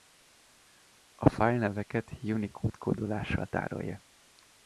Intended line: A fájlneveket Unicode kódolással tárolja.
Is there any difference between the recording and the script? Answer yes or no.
no